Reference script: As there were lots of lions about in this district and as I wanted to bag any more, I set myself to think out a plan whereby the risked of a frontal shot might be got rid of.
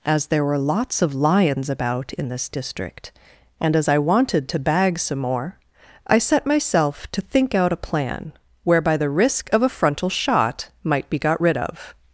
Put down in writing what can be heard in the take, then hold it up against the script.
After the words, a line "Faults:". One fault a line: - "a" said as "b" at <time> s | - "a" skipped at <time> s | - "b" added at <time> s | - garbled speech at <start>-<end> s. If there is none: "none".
As there were lots of lions about in this district and as I wanted to bag some more, I set myself to think out a plan whereby the risk of a frontal shot might be got rid of.
Faults:
- "any" said as "some" at 5.0 s
- "risked" said as "risk" at 9.1 s